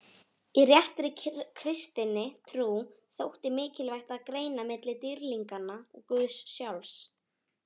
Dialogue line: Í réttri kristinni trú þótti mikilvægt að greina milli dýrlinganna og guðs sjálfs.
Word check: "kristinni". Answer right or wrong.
right